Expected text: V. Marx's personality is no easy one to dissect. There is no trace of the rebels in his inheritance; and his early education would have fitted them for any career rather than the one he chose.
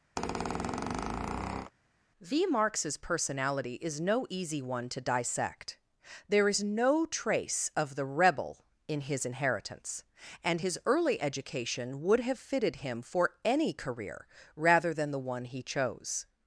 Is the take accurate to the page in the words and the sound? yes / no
no